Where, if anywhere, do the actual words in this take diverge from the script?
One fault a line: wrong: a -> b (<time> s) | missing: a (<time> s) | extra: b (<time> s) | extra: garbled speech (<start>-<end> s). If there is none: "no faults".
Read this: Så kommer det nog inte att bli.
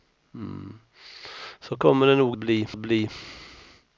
wrong: inte -> bli (2.4 s)